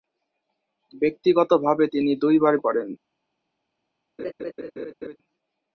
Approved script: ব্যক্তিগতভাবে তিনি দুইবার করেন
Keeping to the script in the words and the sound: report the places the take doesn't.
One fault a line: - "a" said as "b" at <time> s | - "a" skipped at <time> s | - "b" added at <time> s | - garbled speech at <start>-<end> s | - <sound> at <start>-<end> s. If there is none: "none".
- laugh at 4.2-5.2 s